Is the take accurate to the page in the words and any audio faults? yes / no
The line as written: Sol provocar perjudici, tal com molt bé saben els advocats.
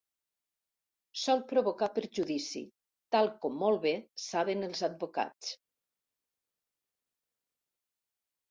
yes